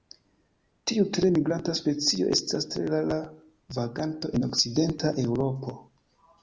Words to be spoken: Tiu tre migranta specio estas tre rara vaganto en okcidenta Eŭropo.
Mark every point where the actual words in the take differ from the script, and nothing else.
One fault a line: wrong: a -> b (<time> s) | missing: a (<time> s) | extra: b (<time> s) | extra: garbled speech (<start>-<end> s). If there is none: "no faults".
no faults